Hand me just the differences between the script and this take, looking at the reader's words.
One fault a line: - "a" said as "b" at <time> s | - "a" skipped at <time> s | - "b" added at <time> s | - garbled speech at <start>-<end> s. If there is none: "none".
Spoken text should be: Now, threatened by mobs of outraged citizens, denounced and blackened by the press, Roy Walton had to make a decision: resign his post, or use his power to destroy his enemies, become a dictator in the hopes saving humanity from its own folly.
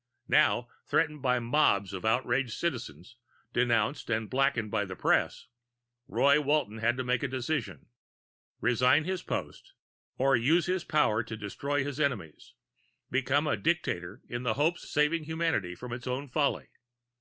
none